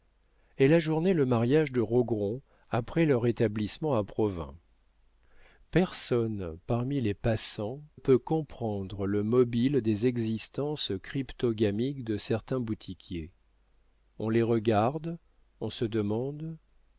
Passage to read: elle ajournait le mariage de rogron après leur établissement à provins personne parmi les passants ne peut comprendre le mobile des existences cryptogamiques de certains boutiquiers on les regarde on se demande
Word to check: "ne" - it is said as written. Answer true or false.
false